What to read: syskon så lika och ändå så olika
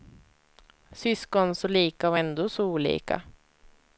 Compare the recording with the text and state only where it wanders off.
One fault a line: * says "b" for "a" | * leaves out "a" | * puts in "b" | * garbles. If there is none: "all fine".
all fine